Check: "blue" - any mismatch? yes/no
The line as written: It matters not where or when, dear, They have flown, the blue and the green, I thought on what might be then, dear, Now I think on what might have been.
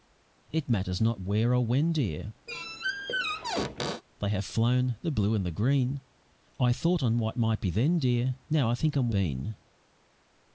no